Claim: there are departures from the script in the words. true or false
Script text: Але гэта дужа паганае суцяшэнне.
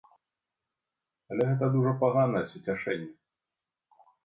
false